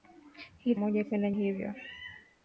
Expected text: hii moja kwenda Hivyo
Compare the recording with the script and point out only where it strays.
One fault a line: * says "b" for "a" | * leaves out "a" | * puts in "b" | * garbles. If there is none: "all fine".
all fine